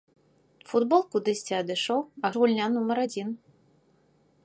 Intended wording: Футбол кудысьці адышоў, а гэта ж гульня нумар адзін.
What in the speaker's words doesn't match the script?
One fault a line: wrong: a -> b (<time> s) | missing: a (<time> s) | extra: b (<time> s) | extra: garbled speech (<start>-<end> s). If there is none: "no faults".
missing: гэта (2.3 s)